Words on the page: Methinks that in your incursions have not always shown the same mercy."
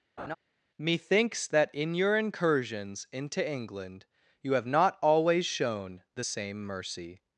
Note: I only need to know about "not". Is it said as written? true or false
true